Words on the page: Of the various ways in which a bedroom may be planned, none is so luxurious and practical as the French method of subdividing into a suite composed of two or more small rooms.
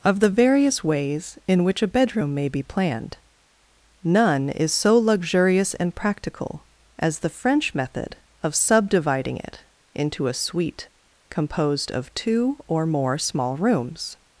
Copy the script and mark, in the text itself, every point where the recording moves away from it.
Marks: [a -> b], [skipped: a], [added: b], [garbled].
Of the various ways in which a bedroom may be planned, none is so luxurious and practical as the French method of subdividing [added: it] into a suite composed of two or more small rooms.